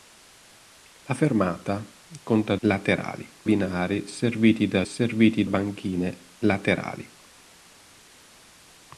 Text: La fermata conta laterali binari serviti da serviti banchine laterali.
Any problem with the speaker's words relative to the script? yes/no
no